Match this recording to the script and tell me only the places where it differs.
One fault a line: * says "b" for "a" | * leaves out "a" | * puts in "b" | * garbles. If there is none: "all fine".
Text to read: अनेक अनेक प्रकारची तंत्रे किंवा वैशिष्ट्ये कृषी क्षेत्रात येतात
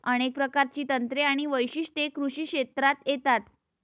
* leaves out "अनेक"
* says "आणि" for "किंवा"